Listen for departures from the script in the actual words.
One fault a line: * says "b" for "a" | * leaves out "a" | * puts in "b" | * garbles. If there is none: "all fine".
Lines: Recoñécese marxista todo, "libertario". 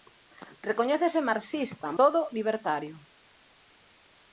all fine